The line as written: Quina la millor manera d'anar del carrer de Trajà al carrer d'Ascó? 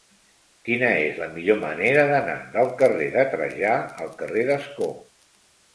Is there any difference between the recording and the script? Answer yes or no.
yes